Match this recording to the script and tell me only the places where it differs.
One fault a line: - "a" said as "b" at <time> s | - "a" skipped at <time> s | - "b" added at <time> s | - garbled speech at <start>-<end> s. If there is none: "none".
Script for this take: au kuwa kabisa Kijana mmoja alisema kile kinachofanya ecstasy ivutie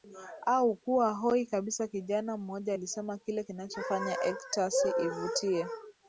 - "hoi" added at 1.1 s